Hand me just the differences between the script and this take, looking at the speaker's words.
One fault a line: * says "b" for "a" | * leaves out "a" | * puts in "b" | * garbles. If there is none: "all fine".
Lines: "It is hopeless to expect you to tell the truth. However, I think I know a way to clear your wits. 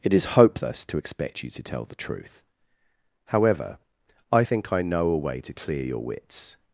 all fine